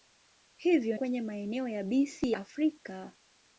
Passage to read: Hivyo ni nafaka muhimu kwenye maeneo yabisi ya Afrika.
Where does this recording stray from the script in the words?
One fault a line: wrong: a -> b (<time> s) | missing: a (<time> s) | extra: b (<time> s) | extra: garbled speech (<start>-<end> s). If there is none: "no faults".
missing: ni nafaka muhimu (1.0 s)
missing: ya (2.3 s)